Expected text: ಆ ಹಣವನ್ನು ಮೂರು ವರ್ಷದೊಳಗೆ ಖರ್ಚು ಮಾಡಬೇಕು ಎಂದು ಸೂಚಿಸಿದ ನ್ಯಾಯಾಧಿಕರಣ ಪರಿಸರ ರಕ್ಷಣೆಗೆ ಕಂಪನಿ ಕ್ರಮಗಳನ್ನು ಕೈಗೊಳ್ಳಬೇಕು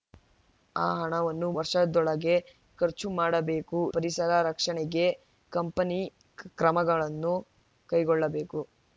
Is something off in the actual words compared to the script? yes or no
yes